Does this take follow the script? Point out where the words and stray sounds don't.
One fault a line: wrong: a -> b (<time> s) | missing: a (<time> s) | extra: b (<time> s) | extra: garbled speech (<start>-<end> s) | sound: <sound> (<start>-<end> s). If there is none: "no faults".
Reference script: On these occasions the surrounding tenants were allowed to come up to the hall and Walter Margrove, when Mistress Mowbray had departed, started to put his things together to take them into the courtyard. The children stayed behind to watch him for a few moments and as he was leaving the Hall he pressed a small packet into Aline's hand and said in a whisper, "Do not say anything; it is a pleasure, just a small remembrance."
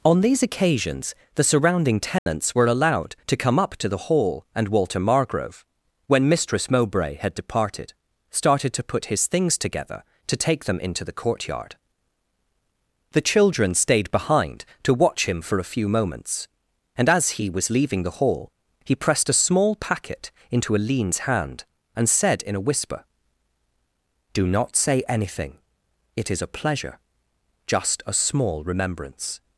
sound: dropout (2.2-2.3 s)